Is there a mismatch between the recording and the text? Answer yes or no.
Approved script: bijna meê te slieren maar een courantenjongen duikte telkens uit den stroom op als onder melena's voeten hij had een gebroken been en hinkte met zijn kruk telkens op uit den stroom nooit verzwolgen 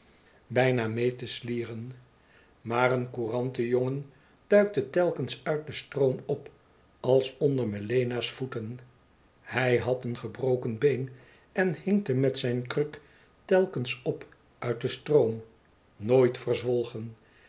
no